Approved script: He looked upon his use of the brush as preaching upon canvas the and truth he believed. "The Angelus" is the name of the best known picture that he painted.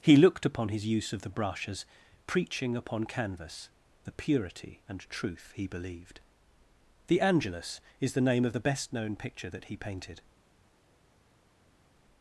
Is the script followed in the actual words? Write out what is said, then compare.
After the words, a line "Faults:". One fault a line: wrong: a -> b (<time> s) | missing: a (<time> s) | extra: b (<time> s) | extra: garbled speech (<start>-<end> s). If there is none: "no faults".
He looked upon his use of the brush as preaching upon canvas the purity and truth he believed. "The Angelus" is the name of the best known picture that he painted.
Faults:
extra: purity (4.1 s)